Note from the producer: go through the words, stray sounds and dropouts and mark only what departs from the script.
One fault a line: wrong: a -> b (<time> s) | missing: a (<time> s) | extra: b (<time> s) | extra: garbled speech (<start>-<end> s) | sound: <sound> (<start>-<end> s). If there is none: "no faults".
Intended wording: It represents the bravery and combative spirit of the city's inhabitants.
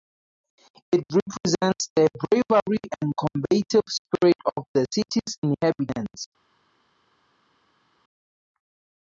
no faults